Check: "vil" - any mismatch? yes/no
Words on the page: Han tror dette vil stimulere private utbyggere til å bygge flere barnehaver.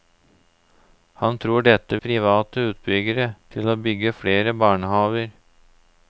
yes